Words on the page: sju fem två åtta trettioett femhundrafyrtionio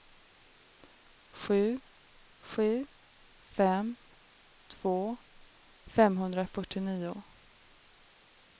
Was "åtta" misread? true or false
true